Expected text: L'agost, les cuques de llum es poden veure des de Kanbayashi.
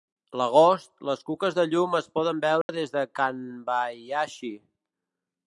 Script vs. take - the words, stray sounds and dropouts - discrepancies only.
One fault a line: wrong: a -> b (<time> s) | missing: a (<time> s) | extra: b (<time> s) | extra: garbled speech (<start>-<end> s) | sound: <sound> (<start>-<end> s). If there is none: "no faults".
sound: dropout (2.6-2.7 s)